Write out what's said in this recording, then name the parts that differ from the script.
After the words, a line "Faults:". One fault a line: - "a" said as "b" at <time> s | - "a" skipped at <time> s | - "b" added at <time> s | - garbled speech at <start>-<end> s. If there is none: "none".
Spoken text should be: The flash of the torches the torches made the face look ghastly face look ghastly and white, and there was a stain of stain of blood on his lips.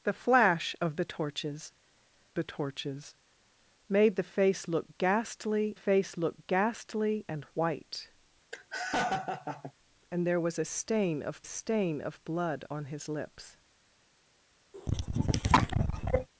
The flash of the torches the torches made the face look ghastly face look ghastly and white, and there was a stain of stain of blood on his lips.
Faults:
none